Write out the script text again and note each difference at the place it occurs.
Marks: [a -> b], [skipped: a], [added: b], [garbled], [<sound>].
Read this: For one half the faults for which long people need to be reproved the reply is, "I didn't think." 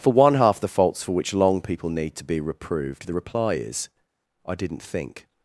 For one half the faults for which long people need to be reproved the reply is, "I didn't think."